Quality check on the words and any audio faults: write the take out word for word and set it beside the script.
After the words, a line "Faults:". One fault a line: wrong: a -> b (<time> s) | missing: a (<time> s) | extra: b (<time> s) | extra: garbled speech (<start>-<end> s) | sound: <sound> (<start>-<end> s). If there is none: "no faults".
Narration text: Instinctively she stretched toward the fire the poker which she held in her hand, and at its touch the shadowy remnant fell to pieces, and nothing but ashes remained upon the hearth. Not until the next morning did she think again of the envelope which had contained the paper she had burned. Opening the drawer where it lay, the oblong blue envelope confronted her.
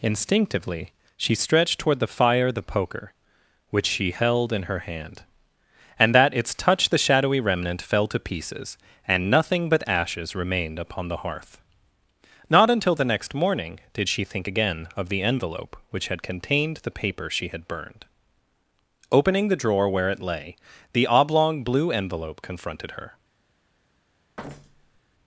Instinctively she stretched toward the fire the poker which she held in her hand, and that its touch the shadowy remnant fell to pieces, and nothing but ashes remained upon the hearth. Not until the next morning did she think again of the envelope which had contained the paper she had burned. Opening the drawer where it lay, the oblong blue envelope confronted her.
Faults:
wrong: at -> that (6.1 s)
sound: thud (24.4-25.0 s)